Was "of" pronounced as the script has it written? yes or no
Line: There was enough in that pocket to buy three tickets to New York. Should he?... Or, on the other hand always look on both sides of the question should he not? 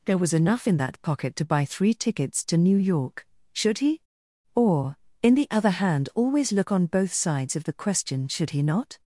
yes